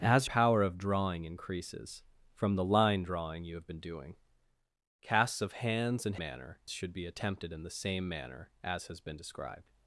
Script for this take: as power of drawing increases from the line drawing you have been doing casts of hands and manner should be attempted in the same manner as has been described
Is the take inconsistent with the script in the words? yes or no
no